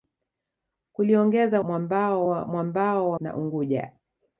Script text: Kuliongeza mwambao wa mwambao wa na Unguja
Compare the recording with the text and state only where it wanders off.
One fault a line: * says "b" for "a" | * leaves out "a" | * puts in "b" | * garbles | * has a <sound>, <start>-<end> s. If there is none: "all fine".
all fine